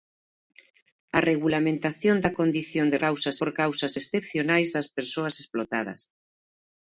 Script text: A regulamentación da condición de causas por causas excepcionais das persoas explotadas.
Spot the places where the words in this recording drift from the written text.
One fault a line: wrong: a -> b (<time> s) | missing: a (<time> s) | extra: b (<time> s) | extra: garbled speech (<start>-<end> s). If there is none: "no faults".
no faults